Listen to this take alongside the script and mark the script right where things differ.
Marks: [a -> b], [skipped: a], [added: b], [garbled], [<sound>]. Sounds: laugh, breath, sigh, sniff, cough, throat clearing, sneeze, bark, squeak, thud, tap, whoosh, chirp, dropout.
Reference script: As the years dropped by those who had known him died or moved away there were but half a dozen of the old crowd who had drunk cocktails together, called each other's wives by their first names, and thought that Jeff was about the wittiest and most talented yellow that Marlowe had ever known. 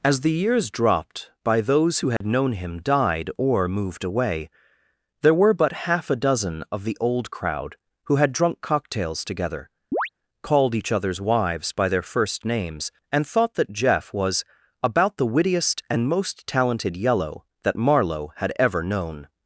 As the years dropped by those who had [dropout] known him died or moved away there were but half a dozen of the old crowd who had drunk cocktails together, [chirp] called each other's wives by their first names, and thought that Jeff was about the wittiest and most talented yellow that Marlowe had ever known.